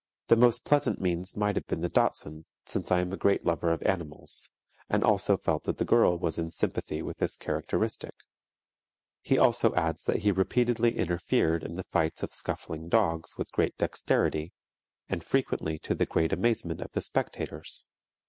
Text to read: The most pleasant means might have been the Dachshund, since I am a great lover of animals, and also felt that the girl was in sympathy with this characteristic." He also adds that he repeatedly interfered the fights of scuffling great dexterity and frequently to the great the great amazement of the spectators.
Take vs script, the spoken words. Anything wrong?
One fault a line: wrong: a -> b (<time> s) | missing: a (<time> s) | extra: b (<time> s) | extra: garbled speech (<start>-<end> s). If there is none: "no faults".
extra: in (11.6 s)
extra: dogs with (12.9 s)
missing: the great (16.3 s)